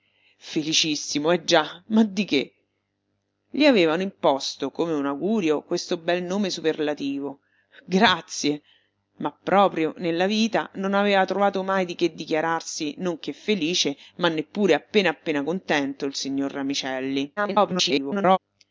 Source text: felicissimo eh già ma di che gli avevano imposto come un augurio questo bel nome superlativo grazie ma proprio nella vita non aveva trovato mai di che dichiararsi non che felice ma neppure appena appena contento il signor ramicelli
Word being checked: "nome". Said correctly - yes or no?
yes